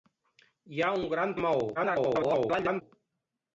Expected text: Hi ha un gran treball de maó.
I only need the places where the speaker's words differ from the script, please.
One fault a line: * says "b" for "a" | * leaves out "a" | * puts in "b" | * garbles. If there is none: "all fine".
* leaves out "treball"
* garbles